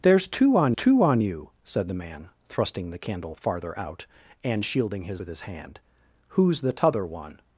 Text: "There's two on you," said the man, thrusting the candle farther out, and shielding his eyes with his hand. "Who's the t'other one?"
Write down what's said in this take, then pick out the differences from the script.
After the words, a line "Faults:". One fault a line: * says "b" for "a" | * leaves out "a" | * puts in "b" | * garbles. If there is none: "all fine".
"There's two on two on you," said the man, thrusting the candle farther out, and shielding his with his hand. "Who's the t'other one?"
Faults:
* puts in "two on"
* leaves out "eyes"